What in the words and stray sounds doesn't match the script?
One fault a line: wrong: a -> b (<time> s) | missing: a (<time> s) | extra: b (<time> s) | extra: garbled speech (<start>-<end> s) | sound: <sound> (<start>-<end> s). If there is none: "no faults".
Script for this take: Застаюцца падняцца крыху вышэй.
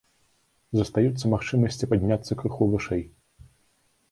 extra: магчымасці (1.3 s)